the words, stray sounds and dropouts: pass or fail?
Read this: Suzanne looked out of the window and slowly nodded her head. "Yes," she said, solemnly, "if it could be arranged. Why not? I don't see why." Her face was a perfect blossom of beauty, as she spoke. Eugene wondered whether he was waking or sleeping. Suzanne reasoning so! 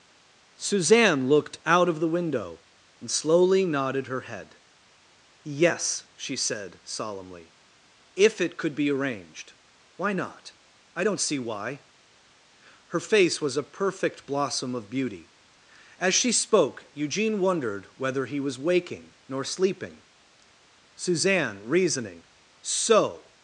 fail